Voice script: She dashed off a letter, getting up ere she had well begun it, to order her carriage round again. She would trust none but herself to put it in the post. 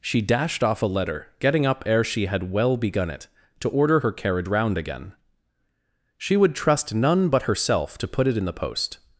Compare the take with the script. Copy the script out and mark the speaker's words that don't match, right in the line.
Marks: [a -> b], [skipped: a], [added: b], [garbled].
She dashed off a letter, getting up ere she had well begun it, to order her carriage round again. She would trust none but herself to put it in the post.